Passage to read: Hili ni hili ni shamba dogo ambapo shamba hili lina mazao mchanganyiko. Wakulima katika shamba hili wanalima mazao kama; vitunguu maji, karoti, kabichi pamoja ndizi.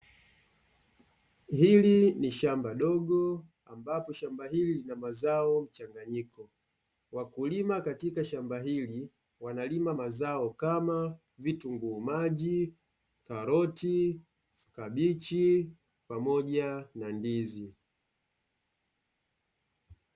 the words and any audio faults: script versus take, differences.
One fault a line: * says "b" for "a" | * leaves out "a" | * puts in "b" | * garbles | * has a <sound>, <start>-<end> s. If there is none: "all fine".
* leaves out "hili ni"
* puts in "na"